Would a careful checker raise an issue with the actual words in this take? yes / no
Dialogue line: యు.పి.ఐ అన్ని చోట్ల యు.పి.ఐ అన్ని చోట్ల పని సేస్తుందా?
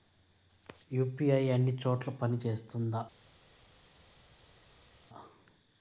yes